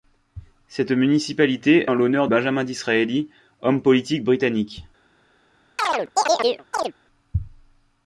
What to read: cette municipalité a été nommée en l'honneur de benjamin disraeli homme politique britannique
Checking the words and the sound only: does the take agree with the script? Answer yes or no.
no